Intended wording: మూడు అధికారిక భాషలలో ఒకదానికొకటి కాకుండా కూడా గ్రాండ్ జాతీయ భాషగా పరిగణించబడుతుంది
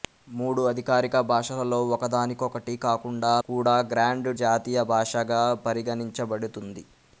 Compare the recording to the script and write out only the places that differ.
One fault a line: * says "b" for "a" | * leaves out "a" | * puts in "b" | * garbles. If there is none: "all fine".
all fine